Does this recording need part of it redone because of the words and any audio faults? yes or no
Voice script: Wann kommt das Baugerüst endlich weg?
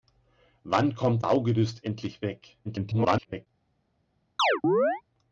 yes